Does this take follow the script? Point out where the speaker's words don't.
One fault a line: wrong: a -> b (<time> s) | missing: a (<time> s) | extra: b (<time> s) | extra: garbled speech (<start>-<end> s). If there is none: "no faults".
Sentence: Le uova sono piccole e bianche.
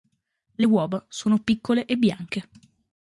no faults